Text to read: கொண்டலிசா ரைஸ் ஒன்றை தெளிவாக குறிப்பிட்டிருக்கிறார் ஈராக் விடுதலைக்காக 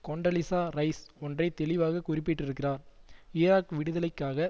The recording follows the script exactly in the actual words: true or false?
true